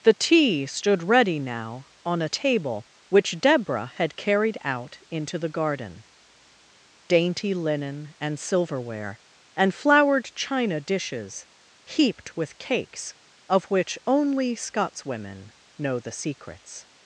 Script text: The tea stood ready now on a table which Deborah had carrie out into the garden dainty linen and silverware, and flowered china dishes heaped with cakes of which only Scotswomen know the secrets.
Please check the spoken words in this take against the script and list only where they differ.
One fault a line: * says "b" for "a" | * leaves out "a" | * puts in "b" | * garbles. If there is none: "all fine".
* says "carried" for "carrie"